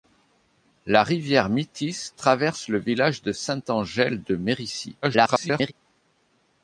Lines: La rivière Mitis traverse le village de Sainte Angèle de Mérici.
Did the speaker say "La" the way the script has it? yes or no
yes